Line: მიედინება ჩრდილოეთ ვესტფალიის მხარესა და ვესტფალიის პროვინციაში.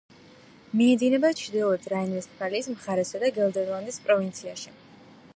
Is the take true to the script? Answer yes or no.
no